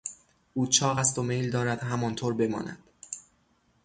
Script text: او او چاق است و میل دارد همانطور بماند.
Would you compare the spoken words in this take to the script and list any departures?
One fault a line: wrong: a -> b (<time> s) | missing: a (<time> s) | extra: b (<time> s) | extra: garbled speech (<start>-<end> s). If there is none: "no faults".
missing: او (0.7 s)